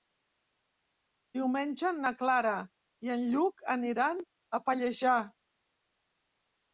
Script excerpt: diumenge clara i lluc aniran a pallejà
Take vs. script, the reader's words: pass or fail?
fail